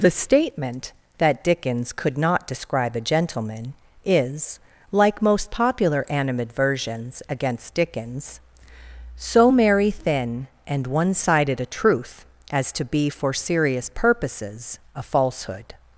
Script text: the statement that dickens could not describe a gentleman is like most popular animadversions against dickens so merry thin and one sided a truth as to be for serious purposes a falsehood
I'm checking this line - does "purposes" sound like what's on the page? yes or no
yes